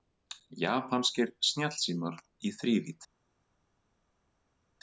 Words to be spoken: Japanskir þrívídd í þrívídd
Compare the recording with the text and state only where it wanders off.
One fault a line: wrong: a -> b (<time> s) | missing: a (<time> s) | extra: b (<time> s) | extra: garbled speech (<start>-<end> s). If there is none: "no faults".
wrong: þrívídd -> snjallsímar (1.5 s)